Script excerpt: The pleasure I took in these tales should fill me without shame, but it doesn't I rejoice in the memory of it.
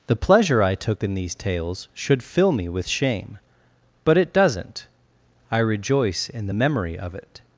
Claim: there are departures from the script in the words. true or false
true